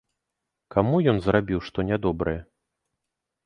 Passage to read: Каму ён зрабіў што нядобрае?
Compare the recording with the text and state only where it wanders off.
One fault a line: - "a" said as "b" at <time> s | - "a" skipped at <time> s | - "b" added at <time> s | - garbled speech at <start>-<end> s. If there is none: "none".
none